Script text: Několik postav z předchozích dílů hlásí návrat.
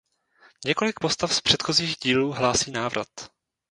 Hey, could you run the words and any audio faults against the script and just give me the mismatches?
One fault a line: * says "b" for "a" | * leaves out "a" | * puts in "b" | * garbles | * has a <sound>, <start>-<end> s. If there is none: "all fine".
all fine